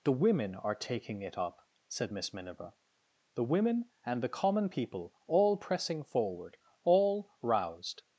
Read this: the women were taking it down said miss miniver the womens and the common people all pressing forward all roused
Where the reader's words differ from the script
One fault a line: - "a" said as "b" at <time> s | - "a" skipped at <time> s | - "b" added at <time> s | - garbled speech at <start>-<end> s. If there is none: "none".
- "were" said as "are" at 0.6 s
- "down" said as "up" at 1.4 s
- "womens" said as "women" at 3.4 s